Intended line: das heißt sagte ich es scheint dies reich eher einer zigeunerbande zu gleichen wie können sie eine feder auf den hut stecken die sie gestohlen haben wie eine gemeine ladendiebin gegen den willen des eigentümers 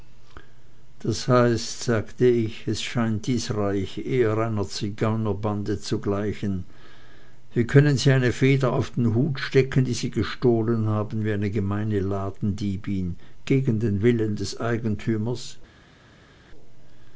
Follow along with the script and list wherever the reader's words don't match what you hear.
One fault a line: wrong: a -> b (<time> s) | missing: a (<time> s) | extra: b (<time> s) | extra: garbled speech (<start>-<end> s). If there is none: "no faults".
no faults